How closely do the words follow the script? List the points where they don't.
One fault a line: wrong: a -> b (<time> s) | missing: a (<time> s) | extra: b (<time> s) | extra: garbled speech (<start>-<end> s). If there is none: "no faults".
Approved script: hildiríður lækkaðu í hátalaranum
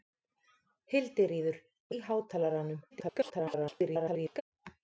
missing: lækkaðu (1.6 s)
extra: garbled speech (2.9-4.4 s)